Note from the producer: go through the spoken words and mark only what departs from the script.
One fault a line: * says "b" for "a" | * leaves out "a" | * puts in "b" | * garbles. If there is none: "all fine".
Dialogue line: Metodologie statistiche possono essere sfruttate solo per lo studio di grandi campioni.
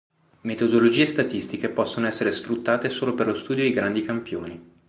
all fine